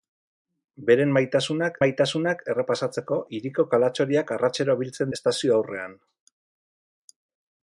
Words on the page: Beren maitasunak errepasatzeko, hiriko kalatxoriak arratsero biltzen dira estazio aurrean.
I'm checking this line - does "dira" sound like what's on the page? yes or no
no